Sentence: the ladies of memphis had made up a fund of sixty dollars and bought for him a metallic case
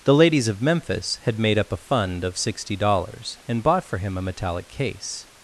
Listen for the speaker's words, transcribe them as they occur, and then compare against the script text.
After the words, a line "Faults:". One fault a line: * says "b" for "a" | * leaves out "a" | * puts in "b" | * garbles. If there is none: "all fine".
the ladies of memphis had made up a fund of sixty dollars and bought for him a metallic case
Faults:
all fine